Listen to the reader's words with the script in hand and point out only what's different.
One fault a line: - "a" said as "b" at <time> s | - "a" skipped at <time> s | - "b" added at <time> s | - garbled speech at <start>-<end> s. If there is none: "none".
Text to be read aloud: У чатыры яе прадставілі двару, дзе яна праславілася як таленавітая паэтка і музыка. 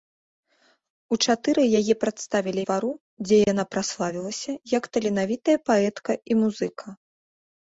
none